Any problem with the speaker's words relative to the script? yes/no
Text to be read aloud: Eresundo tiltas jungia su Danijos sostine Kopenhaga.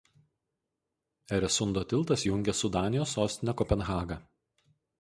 no